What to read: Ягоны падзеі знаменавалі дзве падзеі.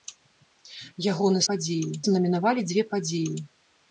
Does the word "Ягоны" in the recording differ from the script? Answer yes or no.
no